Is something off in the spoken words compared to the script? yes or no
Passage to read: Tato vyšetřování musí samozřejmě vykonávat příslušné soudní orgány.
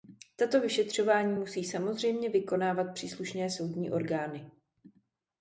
no